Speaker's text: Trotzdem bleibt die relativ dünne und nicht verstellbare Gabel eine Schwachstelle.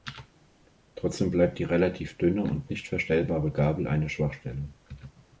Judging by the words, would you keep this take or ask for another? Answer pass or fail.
pass